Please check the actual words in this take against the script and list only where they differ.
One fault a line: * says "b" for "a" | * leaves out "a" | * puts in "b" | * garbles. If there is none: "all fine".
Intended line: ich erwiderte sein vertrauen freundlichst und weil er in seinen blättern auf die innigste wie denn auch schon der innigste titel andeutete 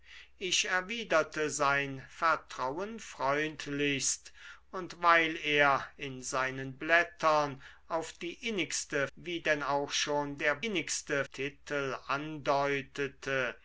all fine